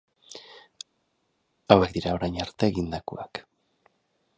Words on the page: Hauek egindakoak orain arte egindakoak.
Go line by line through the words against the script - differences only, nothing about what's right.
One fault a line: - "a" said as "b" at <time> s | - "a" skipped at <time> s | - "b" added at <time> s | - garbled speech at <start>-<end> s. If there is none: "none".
- "egindakoak" said as "dira" at 2.0 s